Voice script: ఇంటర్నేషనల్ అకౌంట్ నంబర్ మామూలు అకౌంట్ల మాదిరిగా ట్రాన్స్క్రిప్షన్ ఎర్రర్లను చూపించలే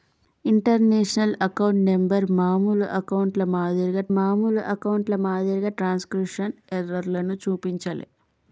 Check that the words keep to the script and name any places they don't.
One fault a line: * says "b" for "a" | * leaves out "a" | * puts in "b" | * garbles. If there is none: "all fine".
* puts in "మామూలు అకౌంట్ల మాదిరిగా"